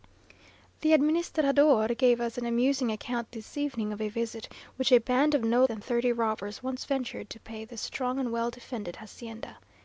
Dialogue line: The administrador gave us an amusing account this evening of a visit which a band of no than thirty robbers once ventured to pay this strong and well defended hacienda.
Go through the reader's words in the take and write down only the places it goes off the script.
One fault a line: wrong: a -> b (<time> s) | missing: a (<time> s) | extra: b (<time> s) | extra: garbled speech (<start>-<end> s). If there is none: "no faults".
no faults